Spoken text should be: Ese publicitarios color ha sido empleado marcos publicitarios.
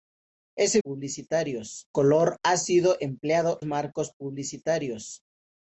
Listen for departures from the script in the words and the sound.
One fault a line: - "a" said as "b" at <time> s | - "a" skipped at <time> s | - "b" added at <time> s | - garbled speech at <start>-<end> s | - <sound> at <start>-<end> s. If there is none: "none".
none